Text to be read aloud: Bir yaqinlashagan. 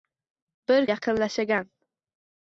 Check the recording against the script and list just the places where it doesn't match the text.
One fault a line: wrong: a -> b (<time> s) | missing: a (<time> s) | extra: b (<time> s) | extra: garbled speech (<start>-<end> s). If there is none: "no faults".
no faults